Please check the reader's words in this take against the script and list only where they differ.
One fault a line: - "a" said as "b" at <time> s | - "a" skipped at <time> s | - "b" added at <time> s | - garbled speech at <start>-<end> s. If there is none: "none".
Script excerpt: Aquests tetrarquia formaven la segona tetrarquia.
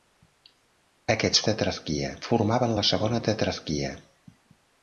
none